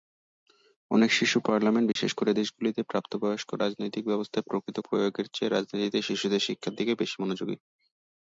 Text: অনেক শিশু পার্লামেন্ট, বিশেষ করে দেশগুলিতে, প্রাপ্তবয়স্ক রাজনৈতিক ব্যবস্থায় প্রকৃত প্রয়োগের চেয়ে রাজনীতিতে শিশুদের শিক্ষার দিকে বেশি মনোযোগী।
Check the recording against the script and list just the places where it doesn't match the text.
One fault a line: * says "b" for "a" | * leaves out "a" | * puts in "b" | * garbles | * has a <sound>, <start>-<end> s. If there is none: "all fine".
* has a dropout, 1.9-2.0 s